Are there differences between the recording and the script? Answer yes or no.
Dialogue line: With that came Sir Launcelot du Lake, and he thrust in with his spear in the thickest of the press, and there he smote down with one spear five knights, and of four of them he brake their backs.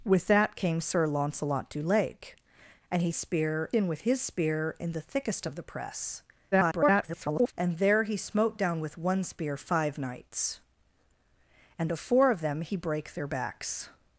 yes